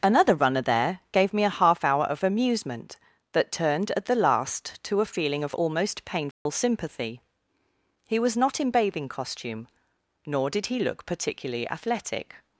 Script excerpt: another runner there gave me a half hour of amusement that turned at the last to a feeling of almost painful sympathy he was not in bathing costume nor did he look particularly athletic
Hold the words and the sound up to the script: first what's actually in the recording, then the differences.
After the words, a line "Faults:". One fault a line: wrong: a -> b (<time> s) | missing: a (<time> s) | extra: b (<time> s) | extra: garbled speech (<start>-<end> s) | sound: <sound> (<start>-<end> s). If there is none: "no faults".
another runner there gave me a half hour of amusement that turned at the last to a feeling of almost painful sympathy he was not in bathing costume nor did he look particularly athletic
Faults:
sound: dropout (6.3-6.5 s)